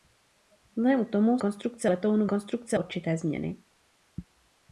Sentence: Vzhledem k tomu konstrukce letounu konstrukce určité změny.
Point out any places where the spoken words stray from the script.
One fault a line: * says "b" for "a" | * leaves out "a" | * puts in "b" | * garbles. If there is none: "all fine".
all fine